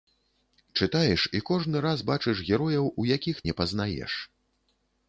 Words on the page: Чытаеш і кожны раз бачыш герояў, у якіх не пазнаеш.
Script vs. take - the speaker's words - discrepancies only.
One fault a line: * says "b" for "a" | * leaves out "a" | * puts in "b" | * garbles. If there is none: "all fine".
all fine